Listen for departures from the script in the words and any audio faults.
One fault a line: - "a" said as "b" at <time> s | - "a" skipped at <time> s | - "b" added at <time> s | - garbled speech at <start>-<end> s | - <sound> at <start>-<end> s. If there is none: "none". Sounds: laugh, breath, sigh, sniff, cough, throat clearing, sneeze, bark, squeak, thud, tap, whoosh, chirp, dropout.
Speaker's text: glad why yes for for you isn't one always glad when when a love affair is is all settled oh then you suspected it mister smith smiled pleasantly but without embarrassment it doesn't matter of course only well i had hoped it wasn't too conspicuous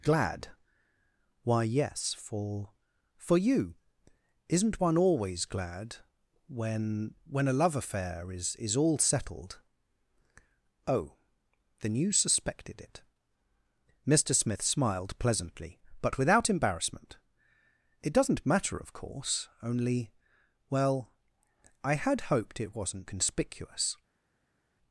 - "too" skipped at 23.1 s